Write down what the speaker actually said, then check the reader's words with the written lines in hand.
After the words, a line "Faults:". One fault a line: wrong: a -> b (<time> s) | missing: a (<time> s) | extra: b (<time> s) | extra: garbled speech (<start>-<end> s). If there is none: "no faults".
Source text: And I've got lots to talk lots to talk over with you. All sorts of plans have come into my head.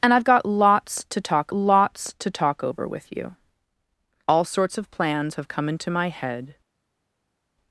And I've got lots to talk lots to talk over with you. All sorts of plans have come into my head.
Faults:
no faults